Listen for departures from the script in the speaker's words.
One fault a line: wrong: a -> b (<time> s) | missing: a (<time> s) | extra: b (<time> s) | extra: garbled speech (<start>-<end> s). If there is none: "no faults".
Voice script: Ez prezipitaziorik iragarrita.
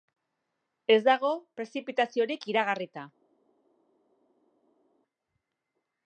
extra: dago (1.1 s)